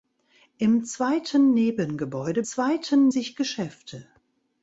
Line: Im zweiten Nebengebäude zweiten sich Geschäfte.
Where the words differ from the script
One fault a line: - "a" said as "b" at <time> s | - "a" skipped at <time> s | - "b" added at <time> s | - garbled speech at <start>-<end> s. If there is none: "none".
none